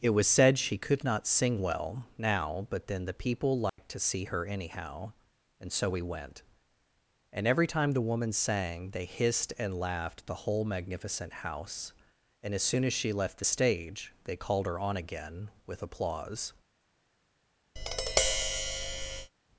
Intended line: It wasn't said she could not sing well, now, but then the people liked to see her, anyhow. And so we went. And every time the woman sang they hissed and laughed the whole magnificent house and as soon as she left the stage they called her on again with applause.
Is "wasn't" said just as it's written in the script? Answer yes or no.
no